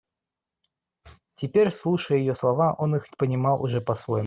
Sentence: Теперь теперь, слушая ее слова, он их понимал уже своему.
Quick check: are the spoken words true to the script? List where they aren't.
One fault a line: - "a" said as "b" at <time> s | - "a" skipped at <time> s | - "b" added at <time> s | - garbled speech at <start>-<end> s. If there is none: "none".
- "теперь" skipped at 1.7 s
- "по" added at 3.8 s